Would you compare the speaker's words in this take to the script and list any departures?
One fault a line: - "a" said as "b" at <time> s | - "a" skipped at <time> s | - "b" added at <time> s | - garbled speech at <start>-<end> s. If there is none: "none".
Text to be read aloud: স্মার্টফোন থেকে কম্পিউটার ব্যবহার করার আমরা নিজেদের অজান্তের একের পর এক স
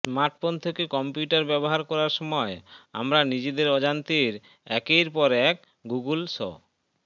- "সময়" added at 2.2 s
- "গুগল" added at 5.8 s